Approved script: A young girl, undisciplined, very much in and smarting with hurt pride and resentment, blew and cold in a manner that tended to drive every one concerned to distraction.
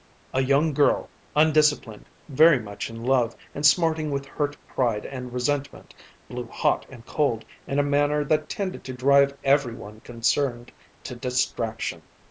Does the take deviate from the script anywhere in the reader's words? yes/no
yes